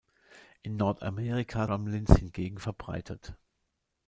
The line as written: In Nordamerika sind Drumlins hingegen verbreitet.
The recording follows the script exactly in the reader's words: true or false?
false